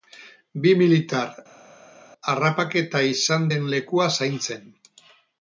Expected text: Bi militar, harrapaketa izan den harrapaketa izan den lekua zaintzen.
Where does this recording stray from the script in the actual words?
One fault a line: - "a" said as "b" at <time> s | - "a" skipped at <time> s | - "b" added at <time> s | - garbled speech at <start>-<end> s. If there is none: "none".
- "harrapaketa izan den" skipped at 3.7 s